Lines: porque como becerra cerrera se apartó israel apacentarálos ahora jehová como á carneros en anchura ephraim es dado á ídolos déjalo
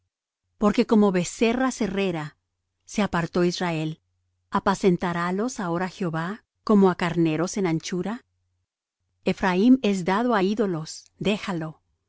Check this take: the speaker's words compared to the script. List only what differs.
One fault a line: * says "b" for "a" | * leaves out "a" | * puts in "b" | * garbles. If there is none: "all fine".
all fine